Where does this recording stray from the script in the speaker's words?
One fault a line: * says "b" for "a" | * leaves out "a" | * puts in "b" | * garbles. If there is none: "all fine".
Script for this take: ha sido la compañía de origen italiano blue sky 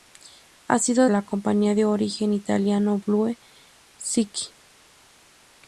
all fine